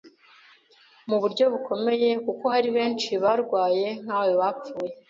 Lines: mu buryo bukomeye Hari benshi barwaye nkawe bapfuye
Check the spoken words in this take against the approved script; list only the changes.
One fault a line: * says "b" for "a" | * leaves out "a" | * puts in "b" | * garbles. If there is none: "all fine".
* puts in "kuko"